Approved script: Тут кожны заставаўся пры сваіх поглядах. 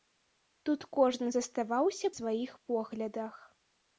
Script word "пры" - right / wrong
wrong